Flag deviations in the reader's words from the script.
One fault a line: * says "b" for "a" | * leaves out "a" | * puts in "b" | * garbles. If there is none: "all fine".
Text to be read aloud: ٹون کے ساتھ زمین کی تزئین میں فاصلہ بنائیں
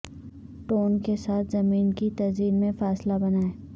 all fine